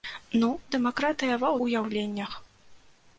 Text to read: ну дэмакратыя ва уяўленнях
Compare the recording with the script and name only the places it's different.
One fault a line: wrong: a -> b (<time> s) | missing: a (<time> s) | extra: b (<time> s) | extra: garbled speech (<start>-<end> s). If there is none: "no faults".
no faults